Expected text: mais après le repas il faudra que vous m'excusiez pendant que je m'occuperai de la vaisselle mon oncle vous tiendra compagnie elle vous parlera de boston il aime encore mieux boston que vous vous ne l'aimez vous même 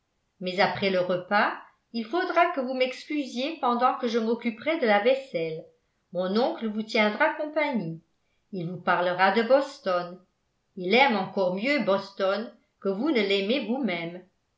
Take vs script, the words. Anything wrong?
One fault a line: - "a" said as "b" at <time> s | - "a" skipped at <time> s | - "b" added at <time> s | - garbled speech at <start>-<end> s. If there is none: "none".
- "elle" said as "il" at 8.5 s
- "vous" skipped at 13.1 s